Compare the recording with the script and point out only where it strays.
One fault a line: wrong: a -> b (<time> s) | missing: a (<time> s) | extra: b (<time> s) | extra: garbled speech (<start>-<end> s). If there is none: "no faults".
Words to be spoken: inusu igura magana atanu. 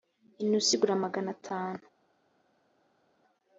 no faults